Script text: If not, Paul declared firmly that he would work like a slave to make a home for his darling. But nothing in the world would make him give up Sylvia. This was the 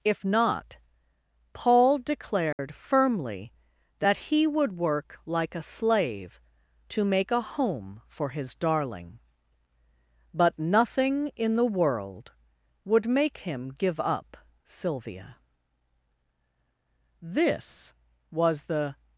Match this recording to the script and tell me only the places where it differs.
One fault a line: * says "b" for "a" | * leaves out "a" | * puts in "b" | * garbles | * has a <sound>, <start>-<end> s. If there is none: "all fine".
* has a dropout, 2.5-2.6 s